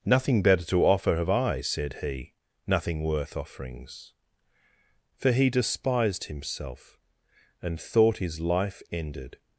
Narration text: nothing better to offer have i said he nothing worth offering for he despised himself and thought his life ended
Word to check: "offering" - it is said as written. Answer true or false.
false